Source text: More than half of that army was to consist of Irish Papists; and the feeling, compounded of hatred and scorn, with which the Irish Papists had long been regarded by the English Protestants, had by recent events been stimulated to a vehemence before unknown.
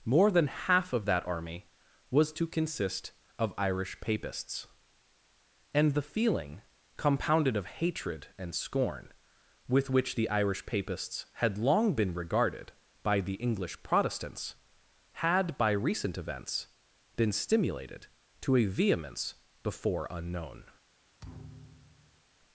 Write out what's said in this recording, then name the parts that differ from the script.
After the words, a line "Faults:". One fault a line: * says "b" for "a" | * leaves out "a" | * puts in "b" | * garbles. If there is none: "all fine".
More than half of that army was to consist of Irish Papists; and the feeling, compounded of hatred and scorn, with which the Irish Papists had long been regarded by the English Protestants, had by recent events been stimulated to a vehemence before unknown.
Faults:
all fine